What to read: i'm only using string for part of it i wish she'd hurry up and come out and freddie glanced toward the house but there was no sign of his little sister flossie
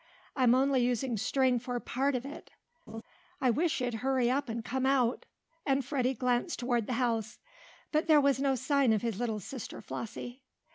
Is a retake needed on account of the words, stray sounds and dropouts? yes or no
yes